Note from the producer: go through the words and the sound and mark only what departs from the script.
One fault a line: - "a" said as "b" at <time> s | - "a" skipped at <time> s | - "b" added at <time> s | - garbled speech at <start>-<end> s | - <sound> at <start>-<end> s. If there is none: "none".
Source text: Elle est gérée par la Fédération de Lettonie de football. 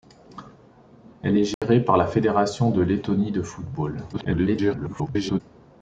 - dropout at 1.5-1.6 s
- garbled speech at 4.1-5.4 s